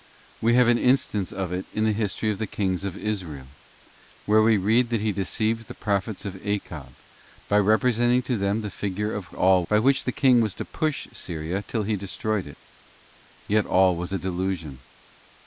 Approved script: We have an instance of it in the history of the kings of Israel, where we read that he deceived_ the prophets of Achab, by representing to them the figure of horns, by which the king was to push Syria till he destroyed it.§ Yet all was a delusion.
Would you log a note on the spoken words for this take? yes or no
yes